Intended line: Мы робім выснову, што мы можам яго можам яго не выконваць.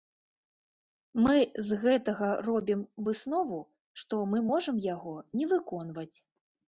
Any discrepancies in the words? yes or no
yes